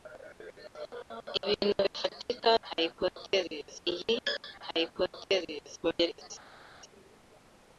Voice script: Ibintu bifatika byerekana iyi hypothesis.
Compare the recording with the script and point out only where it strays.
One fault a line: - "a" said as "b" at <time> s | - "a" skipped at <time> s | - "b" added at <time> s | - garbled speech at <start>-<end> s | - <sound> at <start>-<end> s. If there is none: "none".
- "byerekana" said as "hypothesis" at 2.7 s
- garbled speech at 5.8-6.3 s